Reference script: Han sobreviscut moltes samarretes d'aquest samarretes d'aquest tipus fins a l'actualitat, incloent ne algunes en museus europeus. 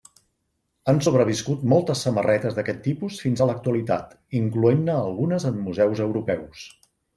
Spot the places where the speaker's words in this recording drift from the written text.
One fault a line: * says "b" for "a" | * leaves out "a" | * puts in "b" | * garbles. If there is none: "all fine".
* leaves out "samarretes d'aquest"